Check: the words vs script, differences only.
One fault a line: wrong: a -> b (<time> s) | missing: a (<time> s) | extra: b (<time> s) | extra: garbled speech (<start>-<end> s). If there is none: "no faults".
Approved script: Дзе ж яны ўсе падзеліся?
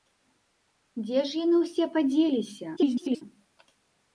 extra: garbled speech (2.8-3.2 s)